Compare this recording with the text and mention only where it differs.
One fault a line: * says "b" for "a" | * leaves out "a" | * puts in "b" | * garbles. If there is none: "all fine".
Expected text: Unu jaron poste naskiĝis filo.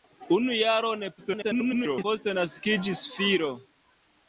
* garbles